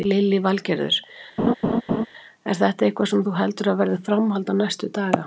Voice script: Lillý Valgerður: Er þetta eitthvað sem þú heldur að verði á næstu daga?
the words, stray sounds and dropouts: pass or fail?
fail